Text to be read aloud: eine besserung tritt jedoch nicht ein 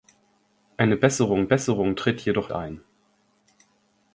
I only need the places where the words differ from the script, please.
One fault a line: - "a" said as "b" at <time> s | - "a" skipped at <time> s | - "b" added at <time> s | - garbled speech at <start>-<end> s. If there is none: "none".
- "besserung" added at 1.5 s
- "nicht" skipped at 2.5 s